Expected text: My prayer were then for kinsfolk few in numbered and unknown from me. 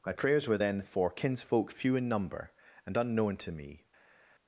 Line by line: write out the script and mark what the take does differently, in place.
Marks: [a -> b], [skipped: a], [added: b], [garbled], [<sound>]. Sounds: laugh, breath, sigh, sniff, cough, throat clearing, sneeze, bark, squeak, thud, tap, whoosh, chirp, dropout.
My [prayer -> prayers] were then for kinsfolk few in [numbered -> number] and unknown [from -> to] me.